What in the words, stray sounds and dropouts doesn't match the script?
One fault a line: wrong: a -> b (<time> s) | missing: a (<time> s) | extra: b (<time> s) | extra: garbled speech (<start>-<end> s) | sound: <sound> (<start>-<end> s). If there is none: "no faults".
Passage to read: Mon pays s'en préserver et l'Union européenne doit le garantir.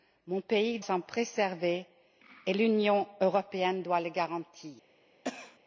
sound: cough (5.2-5.6 s)